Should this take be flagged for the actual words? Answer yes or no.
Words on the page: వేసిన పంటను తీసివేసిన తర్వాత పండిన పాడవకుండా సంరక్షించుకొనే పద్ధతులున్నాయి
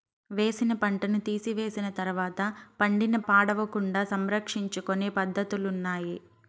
no